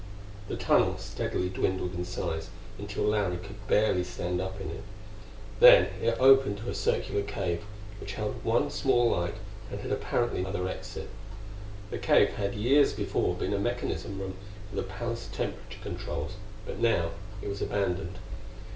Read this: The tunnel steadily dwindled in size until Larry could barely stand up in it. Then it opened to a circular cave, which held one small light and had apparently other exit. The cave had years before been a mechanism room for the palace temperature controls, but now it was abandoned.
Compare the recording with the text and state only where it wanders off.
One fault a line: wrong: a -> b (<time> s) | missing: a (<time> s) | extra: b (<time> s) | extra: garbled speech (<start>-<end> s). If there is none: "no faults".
no faults